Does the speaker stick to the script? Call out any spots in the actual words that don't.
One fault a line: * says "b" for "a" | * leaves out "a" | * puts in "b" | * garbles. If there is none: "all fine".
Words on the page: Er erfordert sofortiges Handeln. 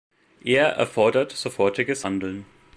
all fine